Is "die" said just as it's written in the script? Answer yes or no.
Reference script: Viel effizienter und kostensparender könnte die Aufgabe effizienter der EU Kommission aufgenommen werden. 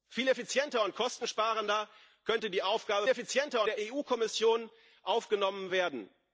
yes